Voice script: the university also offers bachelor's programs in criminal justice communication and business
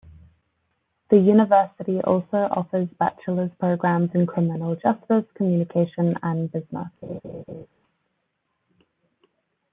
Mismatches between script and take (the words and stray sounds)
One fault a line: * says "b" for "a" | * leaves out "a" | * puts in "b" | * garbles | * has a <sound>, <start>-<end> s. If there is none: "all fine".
* has a laugh, 7.0-7.7 s